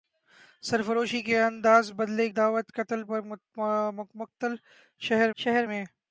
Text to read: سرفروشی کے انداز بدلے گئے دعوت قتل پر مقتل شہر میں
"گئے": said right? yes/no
no